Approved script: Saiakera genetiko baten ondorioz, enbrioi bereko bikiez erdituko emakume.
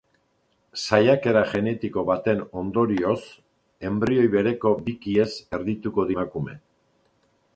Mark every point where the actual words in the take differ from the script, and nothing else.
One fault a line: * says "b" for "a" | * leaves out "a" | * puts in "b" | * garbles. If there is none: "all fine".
all fine